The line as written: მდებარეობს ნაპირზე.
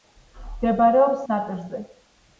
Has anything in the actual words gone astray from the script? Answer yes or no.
no